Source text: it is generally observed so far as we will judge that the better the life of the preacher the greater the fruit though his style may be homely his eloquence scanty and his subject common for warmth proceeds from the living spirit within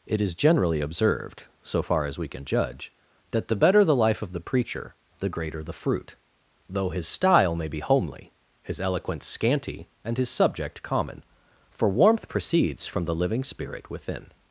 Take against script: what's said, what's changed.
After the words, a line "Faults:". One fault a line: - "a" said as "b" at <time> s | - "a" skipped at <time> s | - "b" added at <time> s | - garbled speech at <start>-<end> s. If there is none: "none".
it is generally observed so far as we can judge that the better the life of the preacher the greater the fruit though his style may be homely his eloquence scanty and his subject common for warmth proceeds from the living spirit within
Faults:
- "will" said as "can" at 2.3 s